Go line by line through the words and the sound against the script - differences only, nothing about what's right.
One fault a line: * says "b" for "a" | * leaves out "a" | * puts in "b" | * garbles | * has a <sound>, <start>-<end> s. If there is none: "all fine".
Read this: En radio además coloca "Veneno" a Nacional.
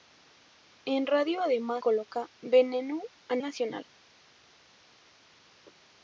all fine